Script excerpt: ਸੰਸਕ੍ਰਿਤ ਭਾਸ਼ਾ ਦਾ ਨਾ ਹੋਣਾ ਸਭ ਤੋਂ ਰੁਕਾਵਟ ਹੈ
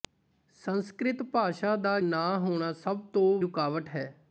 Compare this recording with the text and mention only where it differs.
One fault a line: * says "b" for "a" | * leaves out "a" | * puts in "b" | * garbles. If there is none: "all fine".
all fine